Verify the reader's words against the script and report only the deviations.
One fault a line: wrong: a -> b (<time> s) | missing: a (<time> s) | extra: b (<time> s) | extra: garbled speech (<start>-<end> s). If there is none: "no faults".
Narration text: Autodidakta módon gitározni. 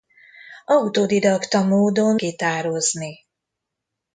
no faults